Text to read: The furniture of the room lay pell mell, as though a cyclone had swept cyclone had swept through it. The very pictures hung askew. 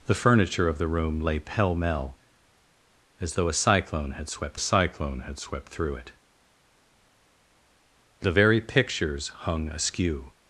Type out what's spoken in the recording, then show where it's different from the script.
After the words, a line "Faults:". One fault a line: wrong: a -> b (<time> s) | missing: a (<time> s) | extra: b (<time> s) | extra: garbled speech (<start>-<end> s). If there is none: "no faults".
The furniture of the room lay pell mell, as though a cyclone had swept cyclone had swept through it. The very pictures hung askew.
Faults:
no faults